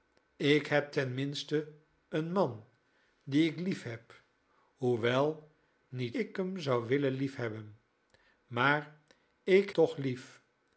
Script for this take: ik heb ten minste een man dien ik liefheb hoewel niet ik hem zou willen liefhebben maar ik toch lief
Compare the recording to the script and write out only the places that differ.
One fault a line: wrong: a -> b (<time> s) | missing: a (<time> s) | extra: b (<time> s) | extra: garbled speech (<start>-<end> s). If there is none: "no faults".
no faults